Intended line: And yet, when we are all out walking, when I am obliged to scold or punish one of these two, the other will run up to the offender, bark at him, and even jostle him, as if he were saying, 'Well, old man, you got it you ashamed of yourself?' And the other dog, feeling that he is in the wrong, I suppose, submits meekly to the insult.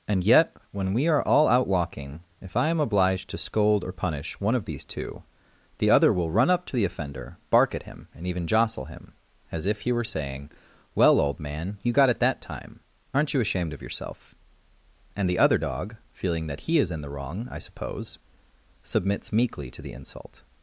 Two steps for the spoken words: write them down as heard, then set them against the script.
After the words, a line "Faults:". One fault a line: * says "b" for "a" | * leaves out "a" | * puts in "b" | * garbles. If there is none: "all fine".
And yet, when we are all out walking, if I am obliged to scold or punish one of these two, the other will run up to the offender, bark at him, and even jostle him, as if he were saying, 'Well, old man, you got it that time; aren't you ashamed of yourself?' And the other dog, feeling that he is in the wrong, I suppose, submits meekly to the insult.
Faults:
* says "if" for "when"
* puts in "that time aren't"